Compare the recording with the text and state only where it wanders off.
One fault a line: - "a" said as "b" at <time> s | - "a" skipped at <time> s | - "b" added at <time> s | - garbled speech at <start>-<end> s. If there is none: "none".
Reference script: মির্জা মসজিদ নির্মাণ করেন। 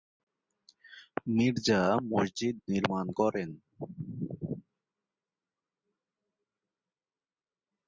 none